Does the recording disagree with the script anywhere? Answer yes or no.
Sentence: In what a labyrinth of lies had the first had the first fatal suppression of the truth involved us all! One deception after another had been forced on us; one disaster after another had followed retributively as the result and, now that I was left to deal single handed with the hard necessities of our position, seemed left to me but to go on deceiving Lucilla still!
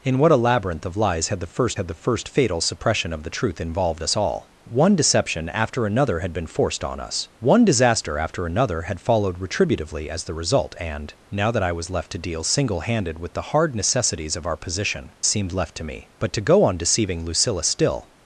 no